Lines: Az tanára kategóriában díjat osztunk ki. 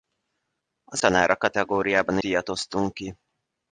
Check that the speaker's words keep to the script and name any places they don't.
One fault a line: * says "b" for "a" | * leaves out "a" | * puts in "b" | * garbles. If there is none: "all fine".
all fine